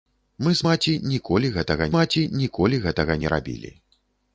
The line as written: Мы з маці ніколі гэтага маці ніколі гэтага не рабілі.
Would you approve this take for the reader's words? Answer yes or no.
yes